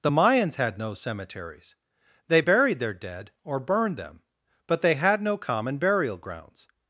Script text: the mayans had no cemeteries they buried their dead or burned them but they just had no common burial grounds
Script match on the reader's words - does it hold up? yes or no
no